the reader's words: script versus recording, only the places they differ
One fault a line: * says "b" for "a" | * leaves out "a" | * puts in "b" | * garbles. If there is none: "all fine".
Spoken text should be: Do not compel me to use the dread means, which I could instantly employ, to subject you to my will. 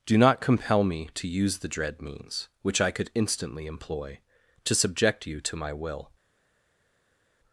all fine